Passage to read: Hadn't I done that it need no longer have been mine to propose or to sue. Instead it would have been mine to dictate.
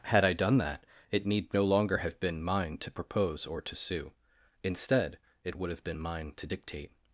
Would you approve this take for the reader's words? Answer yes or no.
no